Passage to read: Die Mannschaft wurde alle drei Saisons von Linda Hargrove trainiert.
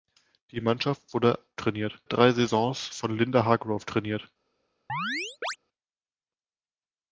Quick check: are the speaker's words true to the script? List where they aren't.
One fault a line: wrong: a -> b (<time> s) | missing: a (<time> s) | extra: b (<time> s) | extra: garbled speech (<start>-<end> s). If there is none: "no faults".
wrong: alle -> trainiert (1.6 s)